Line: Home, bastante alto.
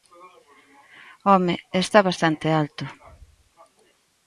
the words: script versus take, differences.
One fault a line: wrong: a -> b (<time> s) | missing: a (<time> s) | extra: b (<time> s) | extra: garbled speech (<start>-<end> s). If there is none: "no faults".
extra: está (1.8 s)